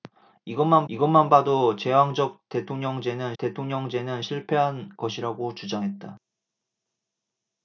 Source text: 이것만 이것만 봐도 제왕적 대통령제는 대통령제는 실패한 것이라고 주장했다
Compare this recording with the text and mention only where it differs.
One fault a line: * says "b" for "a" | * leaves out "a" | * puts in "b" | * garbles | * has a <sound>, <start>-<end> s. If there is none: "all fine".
all fine